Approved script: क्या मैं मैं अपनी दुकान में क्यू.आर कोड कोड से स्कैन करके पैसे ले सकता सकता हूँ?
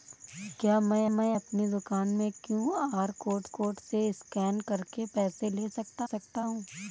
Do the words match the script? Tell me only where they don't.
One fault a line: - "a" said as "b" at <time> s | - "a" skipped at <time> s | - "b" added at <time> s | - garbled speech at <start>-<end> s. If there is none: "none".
none